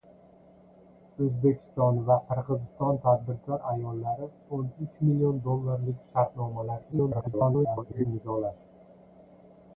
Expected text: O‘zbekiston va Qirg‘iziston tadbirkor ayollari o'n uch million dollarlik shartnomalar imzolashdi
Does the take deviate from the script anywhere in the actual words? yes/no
yes